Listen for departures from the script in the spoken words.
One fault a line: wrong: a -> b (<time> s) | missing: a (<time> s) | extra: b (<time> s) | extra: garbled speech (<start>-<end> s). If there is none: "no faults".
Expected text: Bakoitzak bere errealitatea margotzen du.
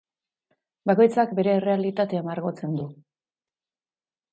no faults